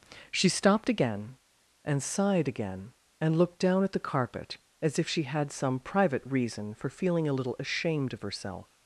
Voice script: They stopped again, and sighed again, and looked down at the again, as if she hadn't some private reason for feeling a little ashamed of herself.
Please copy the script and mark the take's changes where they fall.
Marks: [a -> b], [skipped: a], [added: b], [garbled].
[They -> She] stopped again, and sighed again, and looked down at the [again, -> carpet] as if she [hadn't -> had] some private reason for feeling a little ashamed of herself.